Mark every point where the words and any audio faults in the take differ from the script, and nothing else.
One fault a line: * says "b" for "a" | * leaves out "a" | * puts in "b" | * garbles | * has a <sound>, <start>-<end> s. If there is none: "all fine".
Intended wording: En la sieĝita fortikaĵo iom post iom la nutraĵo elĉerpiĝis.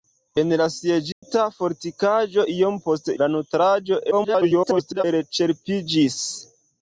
* has a dropout, 1.1-1.2 s
* leaves out "iom"
* garbles